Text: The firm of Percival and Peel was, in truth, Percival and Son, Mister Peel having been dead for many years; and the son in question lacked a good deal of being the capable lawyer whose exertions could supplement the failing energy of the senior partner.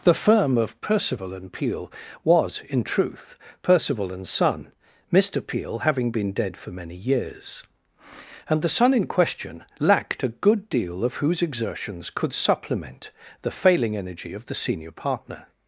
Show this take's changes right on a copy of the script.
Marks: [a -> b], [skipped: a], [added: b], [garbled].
The firm of Percival and Peel was, in truth, Percival and Son, Mister Peel having been dead for many years; and the son in question lacked a good deal of [skipped: being the capable lawyer] whose exertions could supplement the failing energy of the senior partner.